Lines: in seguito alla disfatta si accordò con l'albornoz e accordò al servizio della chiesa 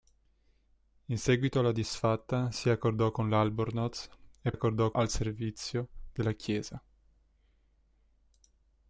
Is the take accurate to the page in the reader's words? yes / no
yes